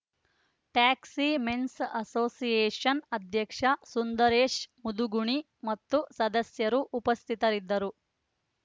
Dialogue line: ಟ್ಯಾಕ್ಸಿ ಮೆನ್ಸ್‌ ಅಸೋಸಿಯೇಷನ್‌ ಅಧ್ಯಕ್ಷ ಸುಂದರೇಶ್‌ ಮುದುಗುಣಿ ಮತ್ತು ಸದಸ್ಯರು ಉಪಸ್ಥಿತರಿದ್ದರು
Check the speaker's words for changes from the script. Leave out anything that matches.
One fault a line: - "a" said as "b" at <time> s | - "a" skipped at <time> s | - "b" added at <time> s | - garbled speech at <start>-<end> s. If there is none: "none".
none